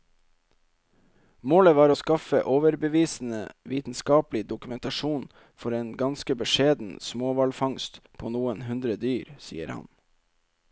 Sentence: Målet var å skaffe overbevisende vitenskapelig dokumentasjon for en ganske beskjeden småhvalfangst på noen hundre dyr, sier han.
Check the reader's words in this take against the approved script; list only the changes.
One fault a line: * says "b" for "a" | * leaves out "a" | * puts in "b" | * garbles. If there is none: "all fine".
all fine